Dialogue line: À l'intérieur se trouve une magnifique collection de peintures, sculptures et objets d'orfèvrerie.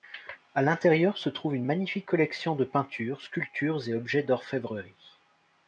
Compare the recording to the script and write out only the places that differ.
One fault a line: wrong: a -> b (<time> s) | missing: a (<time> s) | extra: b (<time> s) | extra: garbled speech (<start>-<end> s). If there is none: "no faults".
no faults